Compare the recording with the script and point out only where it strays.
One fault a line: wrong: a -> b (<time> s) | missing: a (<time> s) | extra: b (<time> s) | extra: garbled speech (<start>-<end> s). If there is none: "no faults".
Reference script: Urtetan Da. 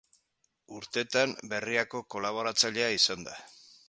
extra: Berriako kolaboratzailea izan (1.5 s)